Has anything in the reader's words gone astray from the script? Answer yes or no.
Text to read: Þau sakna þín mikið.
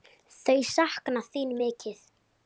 no